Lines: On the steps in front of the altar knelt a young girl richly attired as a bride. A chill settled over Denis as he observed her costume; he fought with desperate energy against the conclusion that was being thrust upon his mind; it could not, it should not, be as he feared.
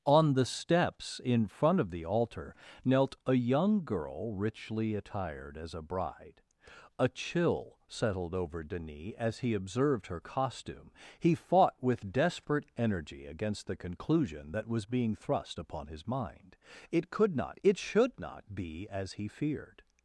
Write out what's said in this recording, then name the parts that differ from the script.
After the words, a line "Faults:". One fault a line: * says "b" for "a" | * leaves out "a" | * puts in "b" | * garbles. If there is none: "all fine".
On the steps in front of the altar knelt a young girl richly attired as a bride. A chill settled over Denis as he observed her costume; he fought with desperate energy against the conclusion that was being thrust upon his mind; it could not, it should not, be as he feared.
Faults:
all fine